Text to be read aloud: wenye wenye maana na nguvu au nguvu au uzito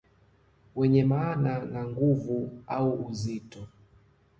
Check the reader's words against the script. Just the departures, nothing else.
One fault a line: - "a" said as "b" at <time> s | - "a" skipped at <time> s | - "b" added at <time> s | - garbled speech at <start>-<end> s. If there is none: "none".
- "wenye" skipped at 1.0 s
- "nguvu au" skipped at 3.1 s